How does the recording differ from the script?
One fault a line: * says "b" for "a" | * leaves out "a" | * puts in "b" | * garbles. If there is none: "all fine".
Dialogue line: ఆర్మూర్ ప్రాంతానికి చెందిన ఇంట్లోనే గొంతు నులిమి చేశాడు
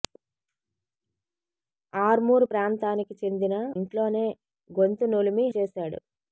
all fine